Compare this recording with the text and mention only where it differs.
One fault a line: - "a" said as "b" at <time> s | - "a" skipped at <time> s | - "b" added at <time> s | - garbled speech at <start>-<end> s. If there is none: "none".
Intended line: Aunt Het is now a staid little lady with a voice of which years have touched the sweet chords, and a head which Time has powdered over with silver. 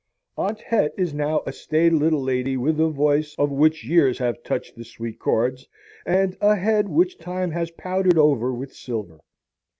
none